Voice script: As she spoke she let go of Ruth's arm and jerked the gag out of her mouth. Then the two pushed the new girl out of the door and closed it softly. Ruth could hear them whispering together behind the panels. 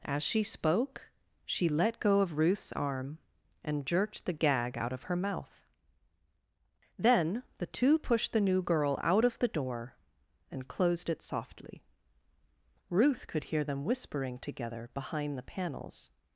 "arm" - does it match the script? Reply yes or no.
yes